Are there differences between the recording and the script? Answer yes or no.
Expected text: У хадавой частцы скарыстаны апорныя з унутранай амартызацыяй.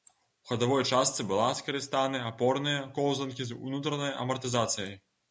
yes